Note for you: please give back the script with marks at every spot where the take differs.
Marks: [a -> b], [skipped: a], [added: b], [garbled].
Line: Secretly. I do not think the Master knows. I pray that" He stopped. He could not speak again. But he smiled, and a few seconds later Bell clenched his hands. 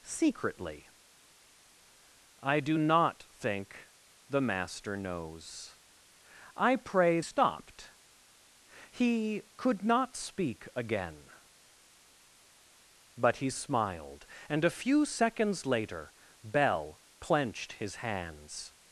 Secretly. I do not think the Master knows. I pray [skipped: that" He] stopped. He could not speak again. But he smiled, and a few seconds later Bell clenched his hands.